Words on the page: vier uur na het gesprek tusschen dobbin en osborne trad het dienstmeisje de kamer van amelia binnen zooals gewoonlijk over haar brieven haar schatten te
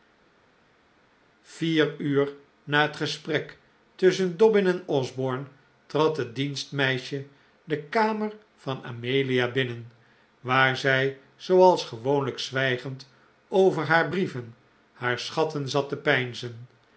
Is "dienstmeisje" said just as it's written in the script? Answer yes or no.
yes